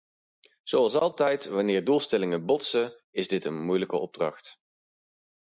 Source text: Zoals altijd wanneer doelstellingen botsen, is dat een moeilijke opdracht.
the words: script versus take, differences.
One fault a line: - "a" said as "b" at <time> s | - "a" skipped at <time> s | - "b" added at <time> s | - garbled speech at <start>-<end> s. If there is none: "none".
- "dat" said as "dit" at 3.3 s